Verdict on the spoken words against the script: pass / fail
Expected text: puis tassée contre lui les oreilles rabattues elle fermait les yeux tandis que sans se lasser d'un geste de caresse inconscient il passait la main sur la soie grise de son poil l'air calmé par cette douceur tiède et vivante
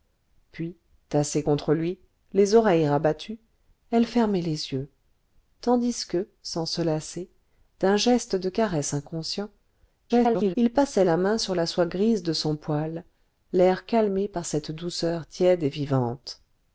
fail